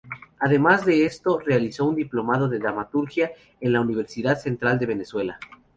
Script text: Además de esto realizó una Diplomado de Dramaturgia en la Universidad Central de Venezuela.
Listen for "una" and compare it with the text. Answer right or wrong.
wrong